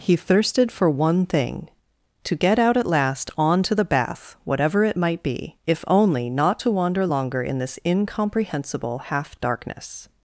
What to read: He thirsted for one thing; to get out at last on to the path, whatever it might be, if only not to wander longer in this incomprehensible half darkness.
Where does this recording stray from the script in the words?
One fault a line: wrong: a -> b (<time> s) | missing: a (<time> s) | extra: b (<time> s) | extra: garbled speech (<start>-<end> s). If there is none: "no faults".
wrong: path -> bath (3.9 s)